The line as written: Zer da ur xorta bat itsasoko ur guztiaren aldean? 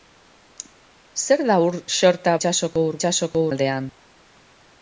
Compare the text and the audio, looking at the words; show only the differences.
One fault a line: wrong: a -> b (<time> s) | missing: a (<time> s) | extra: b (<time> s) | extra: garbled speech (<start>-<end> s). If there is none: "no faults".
missing: bat (2.4 s)
wrong: guztiaren -> itsasoko (3.0 s)